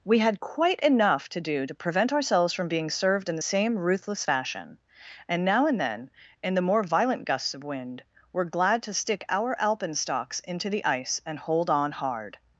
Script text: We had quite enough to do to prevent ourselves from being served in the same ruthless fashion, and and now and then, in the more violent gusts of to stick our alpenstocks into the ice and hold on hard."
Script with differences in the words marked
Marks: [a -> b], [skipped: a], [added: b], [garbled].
We had quite enough to do to prevent ourselves from being served in the same ruthless fashion, and [skipped: and] now and then, in the more violent gusts of [added: wind were glad] to stick our alpenstocks into the ice and hold on hard."